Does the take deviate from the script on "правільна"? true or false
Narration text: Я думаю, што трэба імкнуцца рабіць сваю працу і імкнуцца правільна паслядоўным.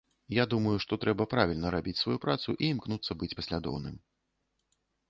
true